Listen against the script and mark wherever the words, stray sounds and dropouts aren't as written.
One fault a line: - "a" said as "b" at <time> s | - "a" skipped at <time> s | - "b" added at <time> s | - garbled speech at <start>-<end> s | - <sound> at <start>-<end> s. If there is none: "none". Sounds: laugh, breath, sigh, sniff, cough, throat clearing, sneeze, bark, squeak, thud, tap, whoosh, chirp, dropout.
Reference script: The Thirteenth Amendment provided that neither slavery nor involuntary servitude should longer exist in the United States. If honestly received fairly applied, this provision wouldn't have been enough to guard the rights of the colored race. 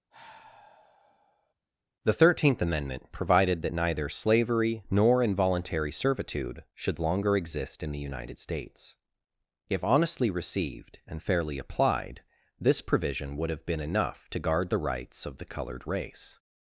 - sigh at 0.1-1.5 s
- "and" added at 11.1 s
- "wouldn't" said as "would" at 13.4 s